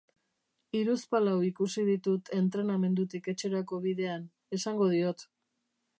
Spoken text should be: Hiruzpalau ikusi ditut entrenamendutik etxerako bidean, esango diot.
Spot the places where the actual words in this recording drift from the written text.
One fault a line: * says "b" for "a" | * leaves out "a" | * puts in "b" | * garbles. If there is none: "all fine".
all fine